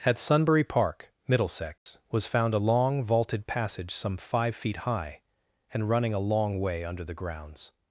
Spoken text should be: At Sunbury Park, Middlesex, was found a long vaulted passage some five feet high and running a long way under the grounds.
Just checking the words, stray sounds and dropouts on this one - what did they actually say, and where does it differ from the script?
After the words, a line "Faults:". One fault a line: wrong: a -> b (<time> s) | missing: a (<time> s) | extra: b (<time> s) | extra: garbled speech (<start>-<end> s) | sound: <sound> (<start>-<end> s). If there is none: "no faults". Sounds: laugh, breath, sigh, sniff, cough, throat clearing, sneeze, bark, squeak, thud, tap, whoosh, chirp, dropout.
At Sunbury Park, Middlesex, was found a long vaulted passage some five feet high and running a long way under the grounds.
Faults:
sound: dropout (1.8-1.9 s)